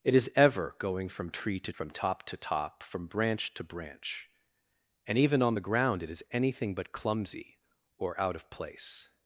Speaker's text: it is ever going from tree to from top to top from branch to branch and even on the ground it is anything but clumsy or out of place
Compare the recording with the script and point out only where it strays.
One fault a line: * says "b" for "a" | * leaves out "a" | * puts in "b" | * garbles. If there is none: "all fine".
all fine